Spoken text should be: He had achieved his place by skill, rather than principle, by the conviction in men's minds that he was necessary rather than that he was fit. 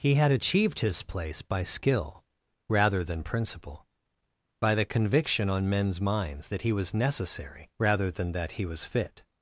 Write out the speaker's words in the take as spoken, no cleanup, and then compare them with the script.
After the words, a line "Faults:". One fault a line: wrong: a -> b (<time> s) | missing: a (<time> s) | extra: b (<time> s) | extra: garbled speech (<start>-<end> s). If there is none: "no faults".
He had achieved his place by skill, rather than principle, by the conviction on men's minds that he was necessary rather than that he was fit.
Faults:
wrong: in -> on (5.5 s)